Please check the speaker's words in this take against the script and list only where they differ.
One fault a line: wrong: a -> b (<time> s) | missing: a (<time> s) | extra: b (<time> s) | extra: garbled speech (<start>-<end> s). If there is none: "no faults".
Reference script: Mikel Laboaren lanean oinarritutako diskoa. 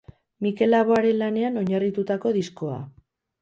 no faults